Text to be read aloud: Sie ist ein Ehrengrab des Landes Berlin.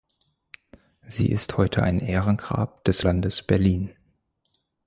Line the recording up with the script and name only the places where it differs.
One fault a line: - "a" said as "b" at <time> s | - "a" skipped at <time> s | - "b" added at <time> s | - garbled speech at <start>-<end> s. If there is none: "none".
- "heute" added at 1.6 s